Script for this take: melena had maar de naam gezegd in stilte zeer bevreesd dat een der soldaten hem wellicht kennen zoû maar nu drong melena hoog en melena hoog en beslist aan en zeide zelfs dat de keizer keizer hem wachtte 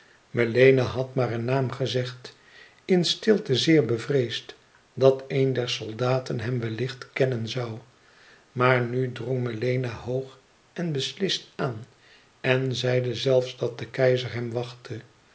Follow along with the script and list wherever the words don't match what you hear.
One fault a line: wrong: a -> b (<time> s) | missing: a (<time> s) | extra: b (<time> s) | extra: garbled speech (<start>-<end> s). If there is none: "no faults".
wrong: de -> een (1.3 s)
missing: melena hoog en (10.9 s)
missing: keizer (14.3 s)